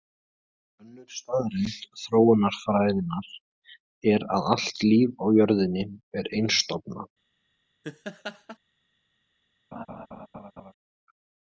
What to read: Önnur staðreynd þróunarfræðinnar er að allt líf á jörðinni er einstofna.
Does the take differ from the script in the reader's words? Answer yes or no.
no